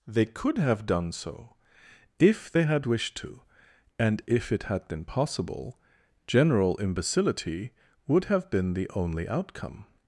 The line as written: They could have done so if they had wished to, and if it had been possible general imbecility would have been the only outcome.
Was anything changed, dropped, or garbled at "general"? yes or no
no